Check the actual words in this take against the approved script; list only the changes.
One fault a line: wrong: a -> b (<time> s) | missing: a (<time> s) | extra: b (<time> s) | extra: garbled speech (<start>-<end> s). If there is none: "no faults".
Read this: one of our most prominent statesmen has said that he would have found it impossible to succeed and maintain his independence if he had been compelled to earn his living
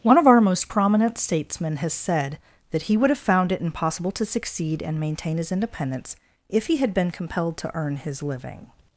no faults